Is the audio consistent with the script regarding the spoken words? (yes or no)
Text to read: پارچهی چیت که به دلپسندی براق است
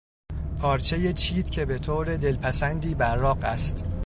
no